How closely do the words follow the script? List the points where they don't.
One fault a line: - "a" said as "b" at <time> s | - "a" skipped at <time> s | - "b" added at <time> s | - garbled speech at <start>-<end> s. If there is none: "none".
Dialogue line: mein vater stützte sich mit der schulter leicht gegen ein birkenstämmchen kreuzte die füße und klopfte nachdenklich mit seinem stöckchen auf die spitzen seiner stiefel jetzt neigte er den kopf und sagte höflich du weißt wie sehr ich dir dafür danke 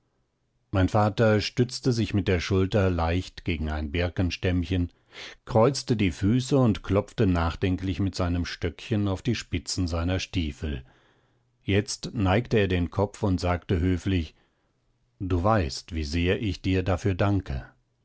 none